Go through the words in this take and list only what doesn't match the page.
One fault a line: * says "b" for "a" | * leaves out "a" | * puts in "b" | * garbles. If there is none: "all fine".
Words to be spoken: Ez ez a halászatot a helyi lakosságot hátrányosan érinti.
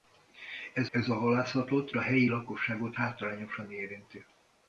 all fine